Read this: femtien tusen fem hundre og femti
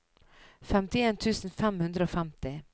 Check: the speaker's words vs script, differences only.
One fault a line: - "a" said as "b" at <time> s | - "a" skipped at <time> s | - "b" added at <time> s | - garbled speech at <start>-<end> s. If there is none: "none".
none